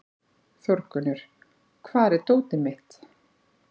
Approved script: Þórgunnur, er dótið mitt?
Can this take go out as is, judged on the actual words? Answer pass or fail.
fail